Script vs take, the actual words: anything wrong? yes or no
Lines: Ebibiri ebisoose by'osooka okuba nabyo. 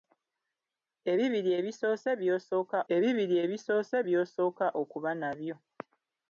yes